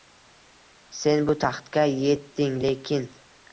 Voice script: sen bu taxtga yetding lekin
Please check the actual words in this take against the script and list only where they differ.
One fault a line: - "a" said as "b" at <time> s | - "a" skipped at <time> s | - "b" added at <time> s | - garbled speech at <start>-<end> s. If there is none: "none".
none